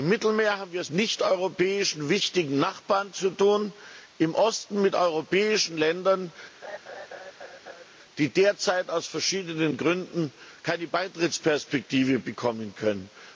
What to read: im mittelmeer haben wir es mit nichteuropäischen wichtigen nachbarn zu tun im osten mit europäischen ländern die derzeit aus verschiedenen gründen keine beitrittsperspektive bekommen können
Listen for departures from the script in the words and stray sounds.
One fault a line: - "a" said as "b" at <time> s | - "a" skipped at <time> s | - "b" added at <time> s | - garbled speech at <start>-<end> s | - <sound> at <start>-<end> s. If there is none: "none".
- "mit" skipped at 0.9 s
- laugh at 6.6-7.9 s